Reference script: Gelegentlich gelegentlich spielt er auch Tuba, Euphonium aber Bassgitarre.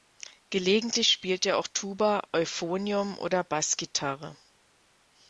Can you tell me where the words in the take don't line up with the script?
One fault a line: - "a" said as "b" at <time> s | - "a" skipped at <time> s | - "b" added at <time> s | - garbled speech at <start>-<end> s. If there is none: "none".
- "gelegentlich" skipped at 1.1 s
- "aber" said as "oder" at 3.2 s